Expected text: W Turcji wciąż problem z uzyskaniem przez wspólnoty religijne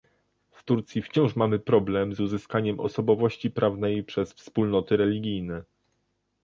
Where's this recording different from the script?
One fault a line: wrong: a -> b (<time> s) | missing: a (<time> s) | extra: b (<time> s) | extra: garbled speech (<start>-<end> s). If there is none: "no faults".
extra: mamy (1.4 s)
extra: osobowości prawnej (2.8 s)